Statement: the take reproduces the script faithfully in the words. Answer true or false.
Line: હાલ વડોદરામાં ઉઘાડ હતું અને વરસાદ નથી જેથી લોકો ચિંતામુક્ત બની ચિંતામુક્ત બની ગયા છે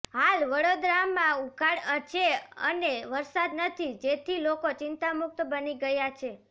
false